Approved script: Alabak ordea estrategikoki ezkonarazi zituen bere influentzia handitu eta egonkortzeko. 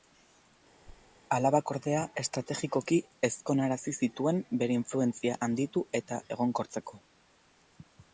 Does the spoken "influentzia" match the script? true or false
true